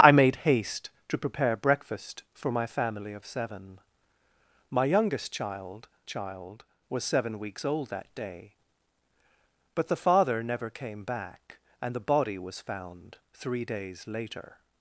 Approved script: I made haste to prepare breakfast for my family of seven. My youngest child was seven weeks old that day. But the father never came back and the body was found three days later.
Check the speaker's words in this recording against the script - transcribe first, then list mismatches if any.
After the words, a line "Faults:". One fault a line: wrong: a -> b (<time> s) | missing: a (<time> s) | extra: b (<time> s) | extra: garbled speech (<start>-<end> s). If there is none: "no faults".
I made haste to prepare breakfast for my family of seven. My youngest child child was seven weeks old that day. But the father never came back and the body was found three days later.
Faults:
extra: child (6.1 s)